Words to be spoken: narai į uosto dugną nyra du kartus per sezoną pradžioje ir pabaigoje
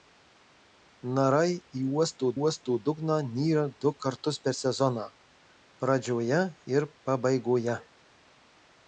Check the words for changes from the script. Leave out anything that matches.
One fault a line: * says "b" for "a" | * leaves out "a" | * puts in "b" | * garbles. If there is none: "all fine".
* puts in "uosto"